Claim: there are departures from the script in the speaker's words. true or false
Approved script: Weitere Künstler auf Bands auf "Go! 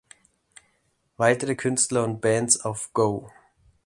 true